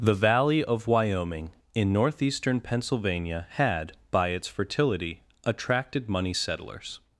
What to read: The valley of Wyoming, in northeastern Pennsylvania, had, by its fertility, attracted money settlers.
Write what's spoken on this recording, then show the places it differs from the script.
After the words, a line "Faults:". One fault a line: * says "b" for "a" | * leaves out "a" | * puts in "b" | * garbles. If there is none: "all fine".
The valley of Wyoming, in northeastern Pennsylvania, had, by its fertility, attracted money settlers.
Faults:
all fine